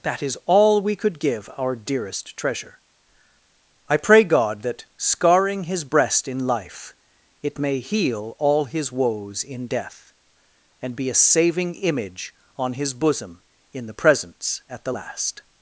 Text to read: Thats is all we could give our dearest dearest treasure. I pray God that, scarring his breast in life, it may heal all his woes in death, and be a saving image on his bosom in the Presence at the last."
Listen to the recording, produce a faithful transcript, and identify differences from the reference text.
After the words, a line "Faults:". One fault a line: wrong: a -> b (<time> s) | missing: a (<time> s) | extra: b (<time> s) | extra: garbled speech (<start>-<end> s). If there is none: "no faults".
That is all we could give our dearest treasure. I pray God that, scarring his breast in life, it may heal all his woes in death, and be a saving image on his bosom in the Presence at the last."
Faults:
wrong: Thats -> That (0.0 s)
missing: dearest (2.4 s)